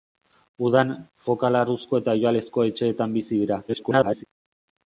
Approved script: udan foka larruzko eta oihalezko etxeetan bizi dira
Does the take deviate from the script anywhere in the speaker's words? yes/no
yes